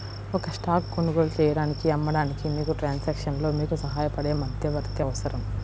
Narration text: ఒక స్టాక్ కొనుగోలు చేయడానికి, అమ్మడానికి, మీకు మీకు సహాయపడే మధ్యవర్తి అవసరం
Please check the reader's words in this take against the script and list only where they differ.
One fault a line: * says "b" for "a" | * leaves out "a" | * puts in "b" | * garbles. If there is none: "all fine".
* puts in "ట్రాన్సాక్షన్లో"